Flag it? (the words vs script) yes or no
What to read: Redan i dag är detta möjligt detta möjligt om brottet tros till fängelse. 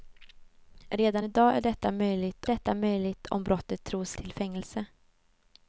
no